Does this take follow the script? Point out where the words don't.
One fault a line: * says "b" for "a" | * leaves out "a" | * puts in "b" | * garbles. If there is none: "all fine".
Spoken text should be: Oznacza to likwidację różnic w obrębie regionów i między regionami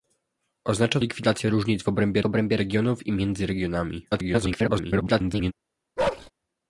* leaves out "to"
* puts in "obrębie"
* garbles